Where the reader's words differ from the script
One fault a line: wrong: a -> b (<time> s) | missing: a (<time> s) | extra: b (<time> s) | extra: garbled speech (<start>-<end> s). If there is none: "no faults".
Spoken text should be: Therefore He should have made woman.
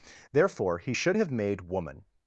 no faults